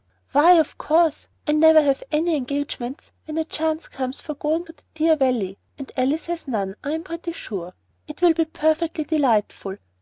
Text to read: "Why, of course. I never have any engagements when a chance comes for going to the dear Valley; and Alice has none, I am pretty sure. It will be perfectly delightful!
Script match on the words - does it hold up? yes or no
yes